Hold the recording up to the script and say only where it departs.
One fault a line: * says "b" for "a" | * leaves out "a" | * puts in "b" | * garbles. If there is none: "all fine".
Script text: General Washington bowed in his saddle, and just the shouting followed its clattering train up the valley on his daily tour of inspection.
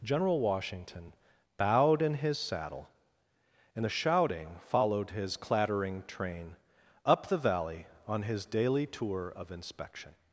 * leaves out "just"
* says "his" for "its"